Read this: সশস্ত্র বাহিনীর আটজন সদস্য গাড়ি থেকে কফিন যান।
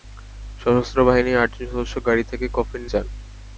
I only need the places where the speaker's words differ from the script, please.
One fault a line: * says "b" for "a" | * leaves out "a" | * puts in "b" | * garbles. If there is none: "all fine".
all fine